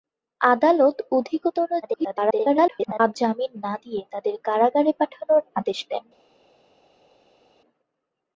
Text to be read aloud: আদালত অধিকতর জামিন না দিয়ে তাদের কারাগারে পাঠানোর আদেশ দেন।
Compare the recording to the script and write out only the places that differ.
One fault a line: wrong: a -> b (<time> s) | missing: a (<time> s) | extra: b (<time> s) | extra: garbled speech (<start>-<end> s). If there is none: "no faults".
extra: garbled speech (1.8-3.2 s)